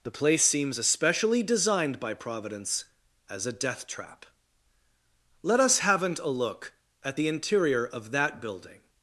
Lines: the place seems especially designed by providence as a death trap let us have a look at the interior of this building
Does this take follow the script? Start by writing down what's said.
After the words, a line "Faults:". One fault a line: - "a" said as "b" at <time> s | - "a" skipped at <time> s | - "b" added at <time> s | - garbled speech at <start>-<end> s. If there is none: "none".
the place seems especially designed by providence as a death trap let us haven't a look at the interior of that building
Faults:
- "have" said as "haven't" at 5.8 s
- "this" said as "that" at 8.1 s